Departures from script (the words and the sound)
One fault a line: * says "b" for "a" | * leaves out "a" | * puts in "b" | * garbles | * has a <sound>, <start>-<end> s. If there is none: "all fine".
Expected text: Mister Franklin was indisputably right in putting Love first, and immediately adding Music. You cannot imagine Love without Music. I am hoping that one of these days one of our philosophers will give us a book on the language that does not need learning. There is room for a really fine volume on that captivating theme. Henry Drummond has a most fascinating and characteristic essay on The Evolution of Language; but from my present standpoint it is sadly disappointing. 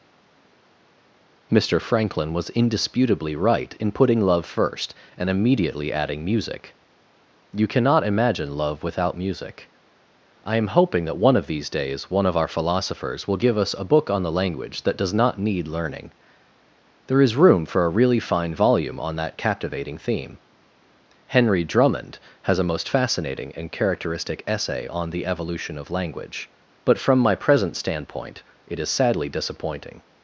all fine